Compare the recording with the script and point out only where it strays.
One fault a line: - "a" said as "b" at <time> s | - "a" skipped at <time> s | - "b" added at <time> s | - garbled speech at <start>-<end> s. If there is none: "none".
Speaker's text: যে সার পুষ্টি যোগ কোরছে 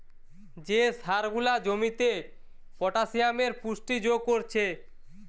- "গুলা জমিতে পটাসিয়ামের" added at 1.3 s